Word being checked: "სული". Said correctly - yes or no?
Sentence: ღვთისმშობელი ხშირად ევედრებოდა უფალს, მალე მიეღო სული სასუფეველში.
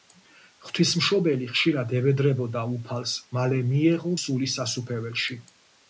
yes